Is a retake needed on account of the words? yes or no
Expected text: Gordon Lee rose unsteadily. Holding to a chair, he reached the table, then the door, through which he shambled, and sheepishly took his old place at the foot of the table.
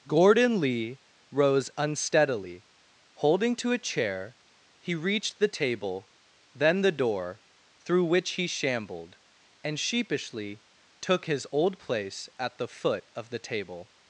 no